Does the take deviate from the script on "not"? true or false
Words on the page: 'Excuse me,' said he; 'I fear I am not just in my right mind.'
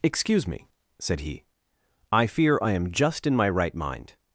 true